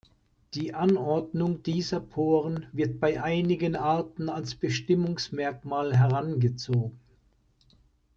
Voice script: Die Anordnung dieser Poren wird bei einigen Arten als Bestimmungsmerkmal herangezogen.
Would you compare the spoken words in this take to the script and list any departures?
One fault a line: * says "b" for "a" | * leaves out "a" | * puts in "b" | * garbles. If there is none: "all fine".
all fine